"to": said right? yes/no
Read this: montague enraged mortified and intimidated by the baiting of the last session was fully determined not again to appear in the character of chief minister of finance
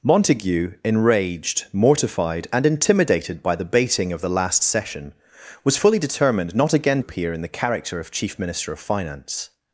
no